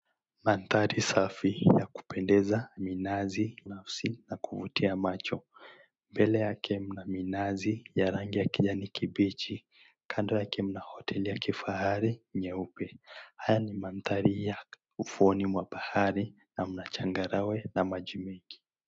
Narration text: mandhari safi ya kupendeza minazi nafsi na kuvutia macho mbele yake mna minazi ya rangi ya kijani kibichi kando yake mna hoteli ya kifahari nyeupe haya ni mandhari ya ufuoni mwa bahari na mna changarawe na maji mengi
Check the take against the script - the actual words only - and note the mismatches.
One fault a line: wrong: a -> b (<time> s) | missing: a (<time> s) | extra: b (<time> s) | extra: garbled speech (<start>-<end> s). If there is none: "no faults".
no faults